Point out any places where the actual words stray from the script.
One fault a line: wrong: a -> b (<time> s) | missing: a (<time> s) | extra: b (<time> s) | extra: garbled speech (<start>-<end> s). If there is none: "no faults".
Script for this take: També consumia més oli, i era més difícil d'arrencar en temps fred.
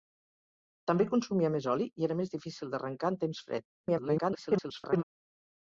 extra: garbled speech (3.8-5.0 s)